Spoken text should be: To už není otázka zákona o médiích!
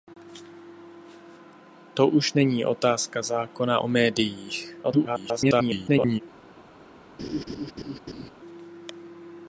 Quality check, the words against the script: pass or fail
fail